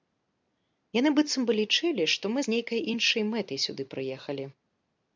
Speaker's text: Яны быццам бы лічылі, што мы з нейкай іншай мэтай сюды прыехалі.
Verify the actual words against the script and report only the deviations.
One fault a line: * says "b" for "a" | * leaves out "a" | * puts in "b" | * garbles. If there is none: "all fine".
all fine